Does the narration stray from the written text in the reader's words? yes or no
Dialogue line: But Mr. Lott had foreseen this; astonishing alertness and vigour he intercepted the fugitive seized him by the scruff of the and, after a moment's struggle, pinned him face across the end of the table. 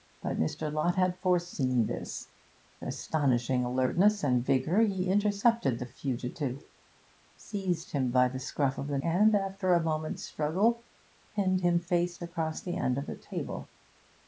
no